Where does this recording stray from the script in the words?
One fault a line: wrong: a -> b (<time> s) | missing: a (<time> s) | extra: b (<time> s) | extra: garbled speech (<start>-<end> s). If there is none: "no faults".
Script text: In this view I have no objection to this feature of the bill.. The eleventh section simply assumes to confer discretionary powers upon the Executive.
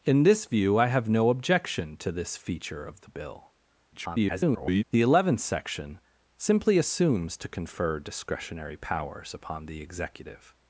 extra: garbled speech (3.9-4.8 s)